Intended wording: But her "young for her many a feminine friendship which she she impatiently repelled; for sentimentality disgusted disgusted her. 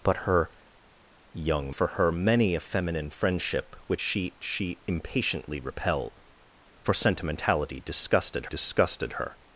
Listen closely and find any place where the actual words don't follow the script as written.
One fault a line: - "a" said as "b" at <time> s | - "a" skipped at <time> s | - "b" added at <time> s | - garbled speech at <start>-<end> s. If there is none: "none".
none